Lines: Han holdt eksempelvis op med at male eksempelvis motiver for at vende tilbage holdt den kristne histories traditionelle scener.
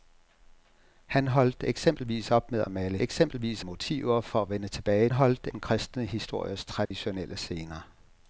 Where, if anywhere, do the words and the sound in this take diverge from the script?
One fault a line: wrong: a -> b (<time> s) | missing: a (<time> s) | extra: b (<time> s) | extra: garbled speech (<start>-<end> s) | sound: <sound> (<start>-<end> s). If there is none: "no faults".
sound: dropout (6.9-6.9 s)